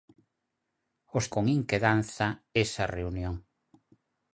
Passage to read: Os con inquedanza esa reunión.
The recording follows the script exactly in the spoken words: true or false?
true